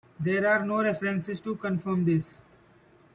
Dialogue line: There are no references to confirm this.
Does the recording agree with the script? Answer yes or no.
yes